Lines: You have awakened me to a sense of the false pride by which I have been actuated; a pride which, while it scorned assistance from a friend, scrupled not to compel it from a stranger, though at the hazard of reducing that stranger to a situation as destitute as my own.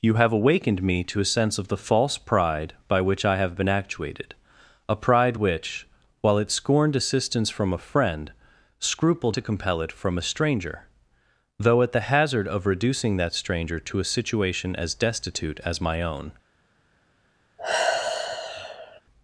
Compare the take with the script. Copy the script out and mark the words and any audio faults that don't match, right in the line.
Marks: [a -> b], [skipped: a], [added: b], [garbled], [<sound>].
You have awakened me to a sense of the false pride by which I have been actuated; a pride which, while it scorned assistance from a friend, scrupled [skipped: not] to compel it from a stranger, though at the hazard of reducing that stranger to a situation as destitute as my own. [sigh]